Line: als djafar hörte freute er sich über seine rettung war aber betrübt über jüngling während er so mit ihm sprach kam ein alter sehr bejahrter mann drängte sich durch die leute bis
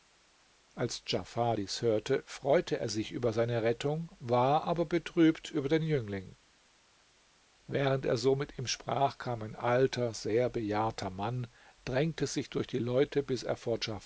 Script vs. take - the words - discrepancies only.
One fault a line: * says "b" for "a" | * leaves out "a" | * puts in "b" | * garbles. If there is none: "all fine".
* puts in "dies"
* puts in "den"